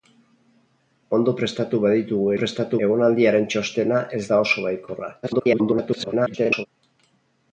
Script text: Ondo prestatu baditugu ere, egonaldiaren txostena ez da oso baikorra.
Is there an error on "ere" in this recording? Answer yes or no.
yes